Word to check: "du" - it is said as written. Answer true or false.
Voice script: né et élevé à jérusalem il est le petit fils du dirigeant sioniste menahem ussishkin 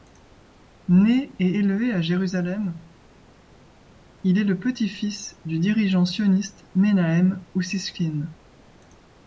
true